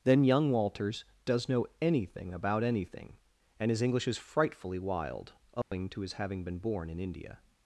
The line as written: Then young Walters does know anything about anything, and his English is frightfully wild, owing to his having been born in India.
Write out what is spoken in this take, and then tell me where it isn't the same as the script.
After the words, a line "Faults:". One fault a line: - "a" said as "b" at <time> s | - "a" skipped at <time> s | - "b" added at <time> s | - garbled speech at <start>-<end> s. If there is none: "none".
Then young Walters does know anything about anything, and his English is frightfully wild, owing to his having been born in India.
Faults:
none